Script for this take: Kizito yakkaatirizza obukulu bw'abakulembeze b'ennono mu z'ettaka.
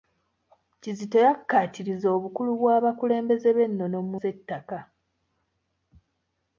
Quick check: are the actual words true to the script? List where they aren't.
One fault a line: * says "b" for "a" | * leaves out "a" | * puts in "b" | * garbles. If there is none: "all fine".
all fine